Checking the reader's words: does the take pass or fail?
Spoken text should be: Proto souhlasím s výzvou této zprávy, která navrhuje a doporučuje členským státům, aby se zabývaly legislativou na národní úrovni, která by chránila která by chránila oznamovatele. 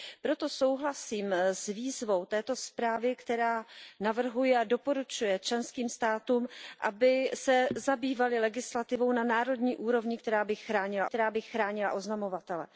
pass